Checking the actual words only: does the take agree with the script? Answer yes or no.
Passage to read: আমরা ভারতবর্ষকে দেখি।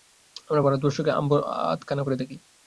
no